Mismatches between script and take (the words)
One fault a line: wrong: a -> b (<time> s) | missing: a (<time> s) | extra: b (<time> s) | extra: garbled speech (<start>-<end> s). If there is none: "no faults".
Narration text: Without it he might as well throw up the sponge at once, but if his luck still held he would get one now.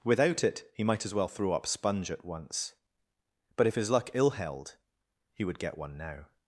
missing: the (1.7 s)
wrong: still -> ill (4.1 s)